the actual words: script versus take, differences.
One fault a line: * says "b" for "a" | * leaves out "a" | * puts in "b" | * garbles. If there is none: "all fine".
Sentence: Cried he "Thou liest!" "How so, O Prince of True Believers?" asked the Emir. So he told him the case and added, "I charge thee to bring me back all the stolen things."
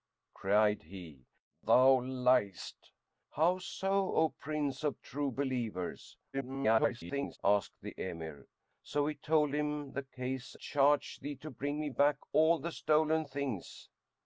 * garbles
* leaves out "and added I"